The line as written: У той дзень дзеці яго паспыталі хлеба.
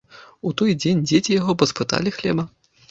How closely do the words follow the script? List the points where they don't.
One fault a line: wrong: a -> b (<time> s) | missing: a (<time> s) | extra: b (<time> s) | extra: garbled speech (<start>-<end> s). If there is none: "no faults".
no faults